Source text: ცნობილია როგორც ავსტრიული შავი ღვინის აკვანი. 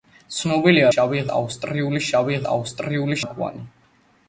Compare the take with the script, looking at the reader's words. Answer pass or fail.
fail